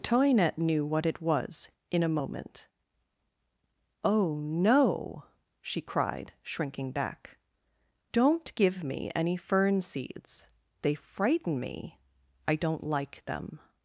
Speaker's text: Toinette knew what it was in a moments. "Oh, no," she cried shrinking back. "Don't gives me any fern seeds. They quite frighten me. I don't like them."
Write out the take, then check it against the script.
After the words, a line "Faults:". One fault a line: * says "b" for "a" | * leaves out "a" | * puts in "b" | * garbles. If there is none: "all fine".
Toinette knew what it was in a moment. "Oh, no," she cried shrinking back. "Don't give me any fern seeds. They frighten me. I don't like them."
Faults:
* says "moment" for "moments"
* says "give" for "gives"
* leaves out "quite"